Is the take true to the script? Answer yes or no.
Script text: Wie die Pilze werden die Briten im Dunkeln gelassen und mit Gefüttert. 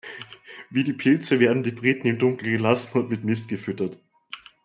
no